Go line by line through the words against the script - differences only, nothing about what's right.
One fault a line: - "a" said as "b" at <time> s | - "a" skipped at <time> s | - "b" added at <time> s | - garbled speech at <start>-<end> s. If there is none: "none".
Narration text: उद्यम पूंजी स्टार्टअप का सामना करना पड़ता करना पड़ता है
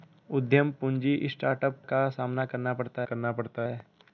none